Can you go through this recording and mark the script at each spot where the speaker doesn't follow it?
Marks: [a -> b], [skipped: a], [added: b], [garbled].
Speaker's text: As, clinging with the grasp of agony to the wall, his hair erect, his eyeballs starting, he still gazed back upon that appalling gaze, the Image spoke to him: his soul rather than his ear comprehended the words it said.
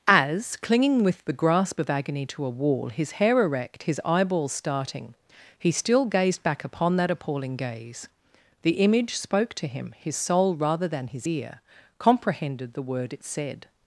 As, clinging with the grasp of agony to [the -> a] wall, his hair erect, his eyeballs starting, he still gazed back upon that appalling gaze, the Image spoke to him: his soul rather than his ear comprehended the [words -> word] it said.